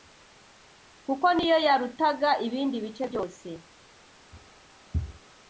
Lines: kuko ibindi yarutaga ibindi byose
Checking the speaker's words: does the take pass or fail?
fail